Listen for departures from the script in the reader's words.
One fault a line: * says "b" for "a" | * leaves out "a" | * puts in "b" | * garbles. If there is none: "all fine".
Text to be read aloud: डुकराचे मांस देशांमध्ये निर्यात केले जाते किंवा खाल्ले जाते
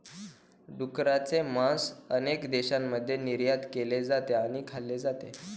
* puts in "अनेक"
* says "आणि" for "किंवा"